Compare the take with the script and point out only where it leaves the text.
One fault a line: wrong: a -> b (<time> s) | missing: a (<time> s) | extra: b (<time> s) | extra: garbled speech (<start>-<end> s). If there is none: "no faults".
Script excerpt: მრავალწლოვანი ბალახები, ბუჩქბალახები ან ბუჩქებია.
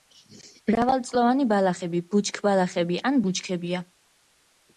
no faults